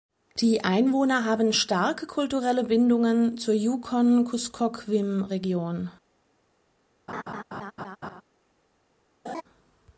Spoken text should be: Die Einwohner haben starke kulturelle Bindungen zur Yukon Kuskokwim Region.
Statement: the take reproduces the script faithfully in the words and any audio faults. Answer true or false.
false